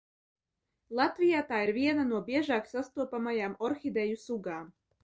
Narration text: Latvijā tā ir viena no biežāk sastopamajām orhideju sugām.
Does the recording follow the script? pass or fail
pass